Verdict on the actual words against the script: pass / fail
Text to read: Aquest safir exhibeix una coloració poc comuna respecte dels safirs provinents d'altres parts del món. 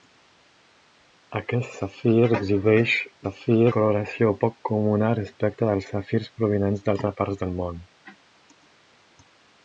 fail